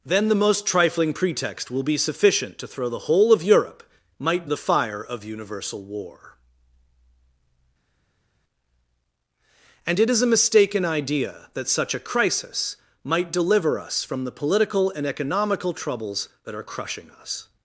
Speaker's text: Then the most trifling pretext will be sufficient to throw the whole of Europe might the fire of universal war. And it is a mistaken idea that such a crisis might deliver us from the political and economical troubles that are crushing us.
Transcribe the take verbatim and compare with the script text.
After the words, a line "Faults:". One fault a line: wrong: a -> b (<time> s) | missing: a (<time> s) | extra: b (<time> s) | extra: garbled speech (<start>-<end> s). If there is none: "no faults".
Then the most trifling pretext will be sufficient to throw the whole of Europe might the fire of universal war. And it is a mistaken idea that such a crisis might deliver us from the political and economical troubles that are crushing us.
Faults:
no faults